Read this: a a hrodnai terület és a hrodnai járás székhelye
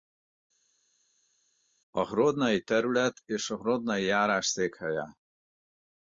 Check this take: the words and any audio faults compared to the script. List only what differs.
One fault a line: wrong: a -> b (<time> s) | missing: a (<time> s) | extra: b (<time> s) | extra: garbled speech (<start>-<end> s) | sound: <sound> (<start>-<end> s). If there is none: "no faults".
missing: a (2.1 s)